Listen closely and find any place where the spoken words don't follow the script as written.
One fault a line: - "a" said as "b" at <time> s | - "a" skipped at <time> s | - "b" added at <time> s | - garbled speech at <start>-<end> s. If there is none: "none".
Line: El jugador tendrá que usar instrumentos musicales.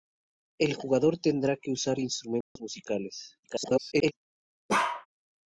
- garbled speech at 3.4-4.1 s